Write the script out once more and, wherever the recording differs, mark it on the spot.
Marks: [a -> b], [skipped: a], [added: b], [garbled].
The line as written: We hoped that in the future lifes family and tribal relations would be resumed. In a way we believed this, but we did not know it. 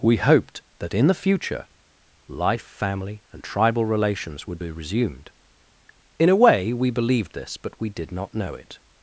We hoped that in the future [lifes -> life] family and tribal relations would be resumed. In a way we believed this, but we did not know it.